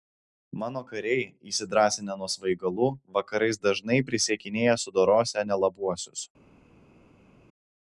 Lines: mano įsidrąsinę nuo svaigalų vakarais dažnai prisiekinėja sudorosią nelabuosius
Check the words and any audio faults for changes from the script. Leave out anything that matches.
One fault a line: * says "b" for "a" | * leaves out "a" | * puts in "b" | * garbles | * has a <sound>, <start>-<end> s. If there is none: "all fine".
* puts in "kariai"